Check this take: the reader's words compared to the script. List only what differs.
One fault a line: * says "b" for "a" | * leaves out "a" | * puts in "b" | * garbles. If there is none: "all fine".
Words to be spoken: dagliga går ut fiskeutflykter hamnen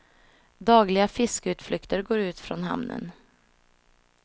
* puts in "fiskeutflykter"
* says "från" for "fiskeutflykter"